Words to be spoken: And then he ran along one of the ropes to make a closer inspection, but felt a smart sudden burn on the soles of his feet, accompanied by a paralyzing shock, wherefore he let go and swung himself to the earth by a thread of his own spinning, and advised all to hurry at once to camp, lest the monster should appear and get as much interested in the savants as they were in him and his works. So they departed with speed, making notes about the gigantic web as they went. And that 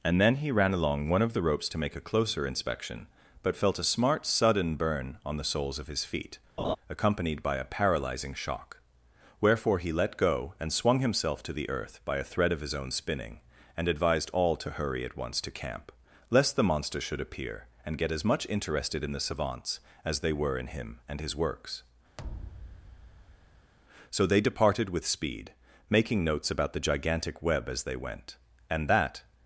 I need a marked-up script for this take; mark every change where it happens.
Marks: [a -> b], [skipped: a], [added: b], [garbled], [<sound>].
And then he ran along one of the ropes to make a closer inspection, but felt a smart sudden burn on the soles of his feet, [laugh] accompanied by a paralyzing shock, wherefore he let go and swung himself to the earth by a thread of his own spinning, and advised all to hurry at once to camp, lest the monster should appear and get as much interested in the savants as they were in him and his works. [thud] So they departed with speed, making notes about the gigantic web as they went. And that